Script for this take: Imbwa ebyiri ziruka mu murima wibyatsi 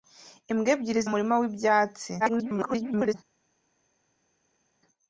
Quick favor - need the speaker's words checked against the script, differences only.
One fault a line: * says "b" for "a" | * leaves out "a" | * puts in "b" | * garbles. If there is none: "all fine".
* leaves out "ziruka"
* garbles